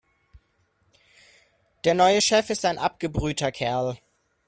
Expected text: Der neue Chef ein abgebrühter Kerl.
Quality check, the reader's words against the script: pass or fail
fail